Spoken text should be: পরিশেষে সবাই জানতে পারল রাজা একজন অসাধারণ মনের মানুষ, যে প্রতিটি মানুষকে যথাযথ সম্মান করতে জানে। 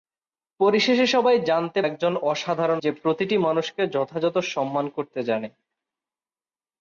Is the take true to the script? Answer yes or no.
no